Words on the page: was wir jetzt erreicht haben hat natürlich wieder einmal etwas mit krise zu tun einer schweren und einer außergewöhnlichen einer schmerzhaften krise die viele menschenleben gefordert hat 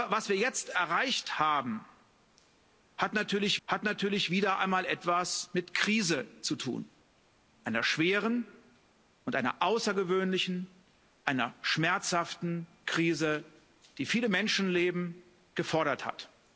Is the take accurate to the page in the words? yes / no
no